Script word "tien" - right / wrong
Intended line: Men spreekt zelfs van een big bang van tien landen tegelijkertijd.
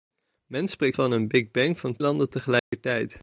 wrong